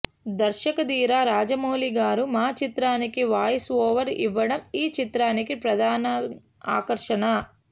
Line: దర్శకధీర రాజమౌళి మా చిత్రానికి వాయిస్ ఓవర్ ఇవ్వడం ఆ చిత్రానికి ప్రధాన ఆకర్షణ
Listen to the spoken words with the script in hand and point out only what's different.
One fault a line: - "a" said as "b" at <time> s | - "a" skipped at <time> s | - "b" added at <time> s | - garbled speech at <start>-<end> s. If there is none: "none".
- "గారు" added at 2.0 s
- "ఆ" said as "ఈ" at 4.7 s